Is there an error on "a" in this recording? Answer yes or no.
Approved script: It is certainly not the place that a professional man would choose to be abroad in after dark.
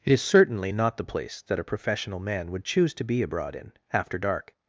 no